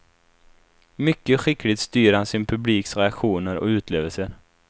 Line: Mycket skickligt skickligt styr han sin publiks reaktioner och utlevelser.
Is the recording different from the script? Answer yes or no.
yes